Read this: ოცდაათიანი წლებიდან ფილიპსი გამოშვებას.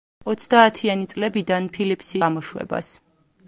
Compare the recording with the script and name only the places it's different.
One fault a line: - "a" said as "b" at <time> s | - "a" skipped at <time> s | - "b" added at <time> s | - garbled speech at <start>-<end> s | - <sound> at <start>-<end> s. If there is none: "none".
none